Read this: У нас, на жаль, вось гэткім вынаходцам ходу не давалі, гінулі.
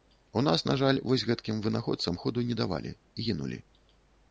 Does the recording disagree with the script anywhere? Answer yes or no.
no